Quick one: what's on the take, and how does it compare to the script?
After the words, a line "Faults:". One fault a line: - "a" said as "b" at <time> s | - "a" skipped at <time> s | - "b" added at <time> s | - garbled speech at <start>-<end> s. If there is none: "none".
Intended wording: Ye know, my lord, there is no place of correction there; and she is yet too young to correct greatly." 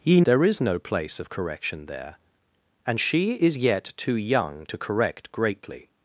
Ye there is no place of correction there; and she is yet too young to correct greatly."
Faults:
- "know my lord" skipped at 0.2 s